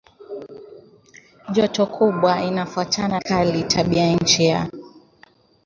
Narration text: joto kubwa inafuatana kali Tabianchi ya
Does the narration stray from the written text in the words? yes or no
no